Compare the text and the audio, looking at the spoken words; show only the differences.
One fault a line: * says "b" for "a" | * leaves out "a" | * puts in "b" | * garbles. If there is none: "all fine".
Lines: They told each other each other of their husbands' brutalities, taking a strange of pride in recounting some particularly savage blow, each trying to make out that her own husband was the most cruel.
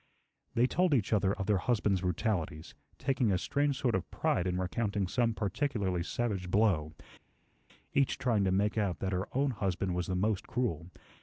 * leaves out "each other"
* puts in "sort"